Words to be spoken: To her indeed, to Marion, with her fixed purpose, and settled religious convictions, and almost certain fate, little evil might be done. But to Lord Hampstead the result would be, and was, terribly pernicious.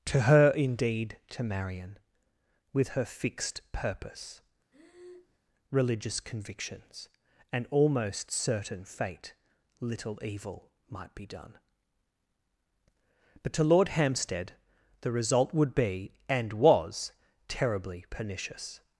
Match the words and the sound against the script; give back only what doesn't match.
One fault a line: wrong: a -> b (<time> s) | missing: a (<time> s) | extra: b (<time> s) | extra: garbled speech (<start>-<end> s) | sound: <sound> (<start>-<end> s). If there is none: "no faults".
missing: and settled (4.4 s)
sound: breath (4.7-5.4 s)